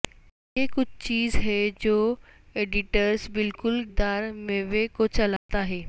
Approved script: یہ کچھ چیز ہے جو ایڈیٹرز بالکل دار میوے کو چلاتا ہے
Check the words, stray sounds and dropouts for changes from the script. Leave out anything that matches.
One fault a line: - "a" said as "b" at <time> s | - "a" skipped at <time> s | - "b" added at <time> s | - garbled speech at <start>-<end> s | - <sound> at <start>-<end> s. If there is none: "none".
- dropout at 5.4-5.5 s